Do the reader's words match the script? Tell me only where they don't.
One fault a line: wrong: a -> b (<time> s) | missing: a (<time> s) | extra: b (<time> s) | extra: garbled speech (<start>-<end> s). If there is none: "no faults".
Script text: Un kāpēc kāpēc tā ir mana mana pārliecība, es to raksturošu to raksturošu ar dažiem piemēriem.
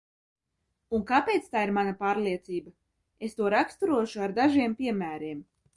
missing: kāpēc (1.5 s)
missing: mana (1.9 s)
missing: to raksturošu (4.2 s)